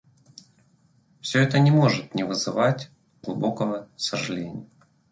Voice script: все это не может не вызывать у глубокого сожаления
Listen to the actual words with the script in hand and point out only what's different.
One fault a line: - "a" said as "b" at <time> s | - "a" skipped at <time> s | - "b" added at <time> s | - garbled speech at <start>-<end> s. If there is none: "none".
none